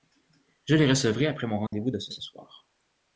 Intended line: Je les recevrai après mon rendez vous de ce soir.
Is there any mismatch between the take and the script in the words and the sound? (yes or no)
yes